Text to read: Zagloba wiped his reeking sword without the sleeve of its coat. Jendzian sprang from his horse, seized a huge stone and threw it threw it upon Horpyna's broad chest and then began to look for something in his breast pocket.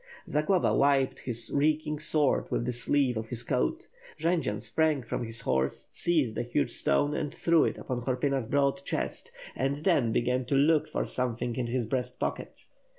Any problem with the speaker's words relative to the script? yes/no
yes